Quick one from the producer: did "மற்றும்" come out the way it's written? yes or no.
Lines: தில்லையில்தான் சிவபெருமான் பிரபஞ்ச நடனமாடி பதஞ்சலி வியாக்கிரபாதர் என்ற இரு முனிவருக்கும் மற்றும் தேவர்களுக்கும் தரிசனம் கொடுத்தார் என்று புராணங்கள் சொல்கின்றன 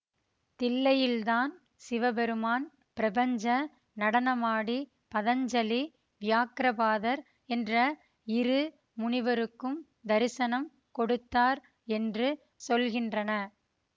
no